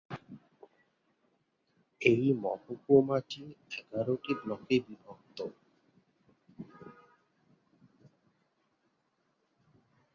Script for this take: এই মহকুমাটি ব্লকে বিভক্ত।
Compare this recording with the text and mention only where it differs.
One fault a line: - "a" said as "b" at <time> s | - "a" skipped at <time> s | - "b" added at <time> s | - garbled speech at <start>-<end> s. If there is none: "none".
- "এগারোটি" added at 3.8 s